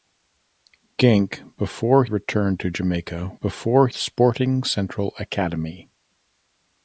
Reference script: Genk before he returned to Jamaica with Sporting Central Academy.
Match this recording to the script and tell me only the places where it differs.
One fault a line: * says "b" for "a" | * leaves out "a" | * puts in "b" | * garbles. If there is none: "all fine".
* leaves out "he"
* says "before" for "with"